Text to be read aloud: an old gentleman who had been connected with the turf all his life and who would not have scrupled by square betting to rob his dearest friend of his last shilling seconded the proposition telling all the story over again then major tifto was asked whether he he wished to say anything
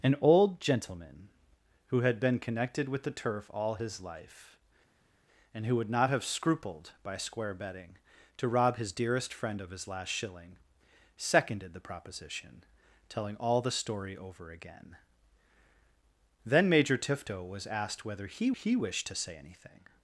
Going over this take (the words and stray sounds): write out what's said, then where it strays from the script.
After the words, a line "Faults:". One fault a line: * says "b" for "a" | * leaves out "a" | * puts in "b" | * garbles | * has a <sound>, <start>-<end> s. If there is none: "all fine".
an old gentleman who had been connected with the turf all his life and who would not have scrupled by square betting to rob his dearest friend of his last shilling seconded the proposition telling all the story over again then major tifto was asked whether he he wished to say anything
Faults:
all fine